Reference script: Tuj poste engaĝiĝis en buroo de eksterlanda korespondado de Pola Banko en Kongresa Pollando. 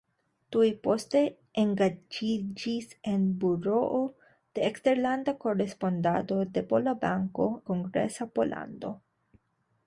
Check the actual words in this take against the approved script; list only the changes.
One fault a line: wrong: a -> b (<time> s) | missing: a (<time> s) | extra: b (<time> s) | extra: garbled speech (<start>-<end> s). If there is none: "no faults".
missing: en (7.5 s)